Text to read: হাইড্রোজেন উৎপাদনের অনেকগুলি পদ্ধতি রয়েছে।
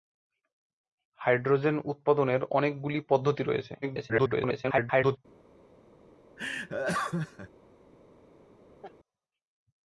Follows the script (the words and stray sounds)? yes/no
no